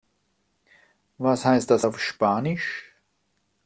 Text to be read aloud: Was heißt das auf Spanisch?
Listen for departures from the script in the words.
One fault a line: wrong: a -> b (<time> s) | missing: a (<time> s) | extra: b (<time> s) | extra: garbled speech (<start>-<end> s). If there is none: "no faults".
no faults